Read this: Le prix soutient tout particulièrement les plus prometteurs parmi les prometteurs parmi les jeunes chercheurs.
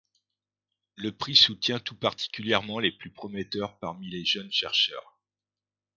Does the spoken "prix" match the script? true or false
true